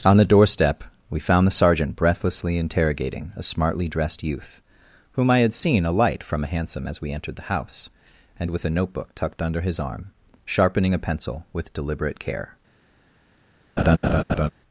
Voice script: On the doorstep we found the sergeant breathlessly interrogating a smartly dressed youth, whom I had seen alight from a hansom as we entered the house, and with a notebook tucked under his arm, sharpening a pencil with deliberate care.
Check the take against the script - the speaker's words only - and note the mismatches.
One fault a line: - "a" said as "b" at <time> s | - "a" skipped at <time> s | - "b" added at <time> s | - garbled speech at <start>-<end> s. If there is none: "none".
none